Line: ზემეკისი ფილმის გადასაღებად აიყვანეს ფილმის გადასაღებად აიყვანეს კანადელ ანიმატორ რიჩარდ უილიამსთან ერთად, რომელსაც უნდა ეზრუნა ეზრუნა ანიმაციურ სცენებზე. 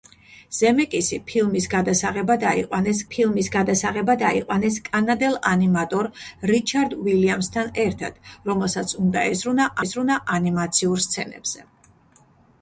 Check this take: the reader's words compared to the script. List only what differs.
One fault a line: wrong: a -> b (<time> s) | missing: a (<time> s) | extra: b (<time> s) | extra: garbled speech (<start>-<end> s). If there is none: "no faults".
no faults